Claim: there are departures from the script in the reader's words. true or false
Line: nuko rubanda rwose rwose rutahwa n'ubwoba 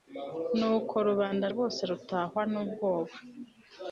true